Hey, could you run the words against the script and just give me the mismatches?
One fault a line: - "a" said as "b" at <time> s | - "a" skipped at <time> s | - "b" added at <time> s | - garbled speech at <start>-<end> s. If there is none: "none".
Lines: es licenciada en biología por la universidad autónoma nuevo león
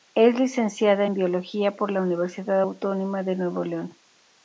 - "de" added at 3.2 s